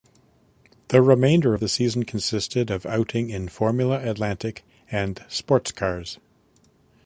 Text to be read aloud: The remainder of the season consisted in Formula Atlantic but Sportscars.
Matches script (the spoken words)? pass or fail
fail